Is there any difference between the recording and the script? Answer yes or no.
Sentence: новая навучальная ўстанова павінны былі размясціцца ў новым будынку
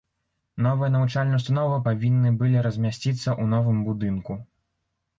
no